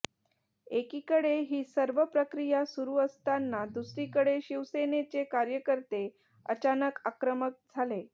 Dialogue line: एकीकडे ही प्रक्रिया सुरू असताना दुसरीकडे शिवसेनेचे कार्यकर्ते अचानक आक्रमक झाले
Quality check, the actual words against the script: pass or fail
fail